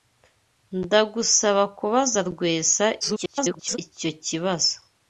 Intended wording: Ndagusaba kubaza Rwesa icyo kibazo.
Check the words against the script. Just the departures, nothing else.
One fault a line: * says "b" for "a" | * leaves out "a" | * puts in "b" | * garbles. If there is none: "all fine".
* garbles